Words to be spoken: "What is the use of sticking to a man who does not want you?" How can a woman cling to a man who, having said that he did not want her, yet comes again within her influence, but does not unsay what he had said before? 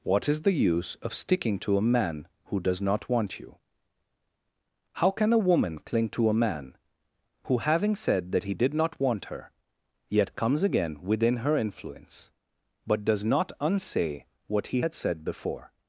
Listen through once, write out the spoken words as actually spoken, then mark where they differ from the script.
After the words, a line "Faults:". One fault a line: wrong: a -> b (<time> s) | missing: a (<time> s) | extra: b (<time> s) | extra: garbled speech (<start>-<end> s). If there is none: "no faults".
"What is the use of sticking to a man who does not want you?" How can a woman cling to a man who, having said that he did not want her, yet comes again within her influence, but does not unsay what he had said before?
Faults:
no faults